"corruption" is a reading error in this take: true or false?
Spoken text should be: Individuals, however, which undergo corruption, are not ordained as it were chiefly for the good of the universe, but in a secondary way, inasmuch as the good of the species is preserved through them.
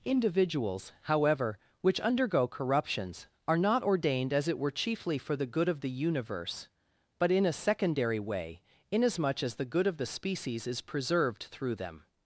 true